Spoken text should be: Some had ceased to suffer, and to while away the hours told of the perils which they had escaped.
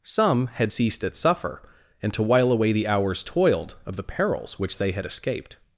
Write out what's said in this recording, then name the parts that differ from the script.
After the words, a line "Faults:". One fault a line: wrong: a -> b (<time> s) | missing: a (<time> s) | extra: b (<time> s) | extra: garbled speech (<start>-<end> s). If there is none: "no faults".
Some had ceased at suffer, and to while away the hours toiled of the perils which they had escaped.
Faults:
wrong: to -> at (1.0 s)
wrong: told -> toiled (3.2 s)